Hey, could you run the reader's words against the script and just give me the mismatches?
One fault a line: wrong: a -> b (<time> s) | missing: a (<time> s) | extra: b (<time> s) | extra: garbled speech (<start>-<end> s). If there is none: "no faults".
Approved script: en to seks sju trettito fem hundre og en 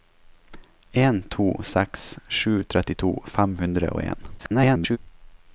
extra: garbled speech (4.4-5.0 s)